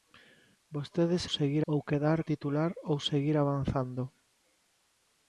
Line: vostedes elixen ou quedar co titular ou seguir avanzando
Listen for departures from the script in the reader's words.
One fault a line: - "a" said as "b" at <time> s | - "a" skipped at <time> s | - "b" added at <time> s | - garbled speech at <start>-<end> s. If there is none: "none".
- "elixen" said as "seguir" at 1.4 s
- "co" skipped at 2.2 s